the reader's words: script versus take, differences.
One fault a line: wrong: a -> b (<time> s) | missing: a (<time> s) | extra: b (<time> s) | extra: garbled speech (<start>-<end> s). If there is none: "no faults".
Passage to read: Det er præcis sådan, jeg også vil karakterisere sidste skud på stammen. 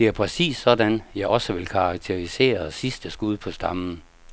no faults